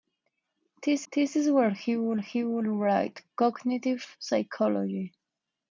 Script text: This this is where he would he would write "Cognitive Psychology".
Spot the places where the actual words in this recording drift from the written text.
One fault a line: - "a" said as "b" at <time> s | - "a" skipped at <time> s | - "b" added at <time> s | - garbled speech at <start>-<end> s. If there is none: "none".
none